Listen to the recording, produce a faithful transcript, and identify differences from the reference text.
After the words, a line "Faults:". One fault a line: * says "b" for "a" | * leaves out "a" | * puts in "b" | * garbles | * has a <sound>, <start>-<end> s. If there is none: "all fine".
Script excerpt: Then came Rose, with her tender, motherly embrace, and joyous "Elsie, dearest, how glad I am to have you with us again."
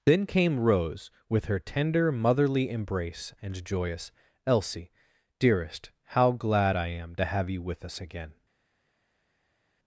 Then came Rose, with her tender, motherly embrace, and joyous "Elsie, dearest, how glad I am to have you with us again."
Faults:
all fine